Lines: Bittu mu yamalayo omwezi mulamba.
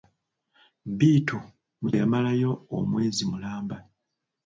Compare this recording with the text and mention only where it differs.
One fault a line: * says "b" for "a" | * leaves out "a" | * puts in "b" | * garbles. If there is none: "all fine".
all fine